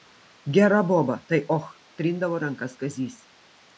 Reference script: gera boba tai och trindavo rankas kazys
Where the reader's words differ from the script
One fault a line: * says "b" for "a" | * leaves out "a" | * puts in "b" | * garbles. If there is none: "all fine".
all fine